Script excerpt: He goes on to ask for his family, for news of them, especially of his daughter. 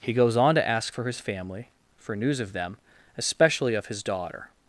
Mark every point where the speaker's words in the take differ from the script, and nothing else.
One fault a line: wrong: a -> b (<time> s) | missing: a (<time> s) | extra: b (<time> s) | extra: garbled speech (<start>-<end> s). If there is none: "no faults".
no faults